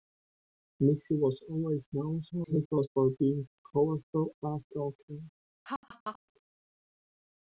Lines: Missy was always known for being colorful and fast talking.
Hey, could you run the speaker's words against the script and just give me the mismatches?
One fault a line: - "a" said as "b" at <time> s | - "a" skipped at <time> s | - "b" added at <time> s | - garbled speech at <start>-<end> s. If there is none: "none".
- garbled speech at 2.3-2.9 s
- "and" skipped at 4.3 s